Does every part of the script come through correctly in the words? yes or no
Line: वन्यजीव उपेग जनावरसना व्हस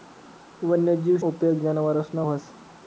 yes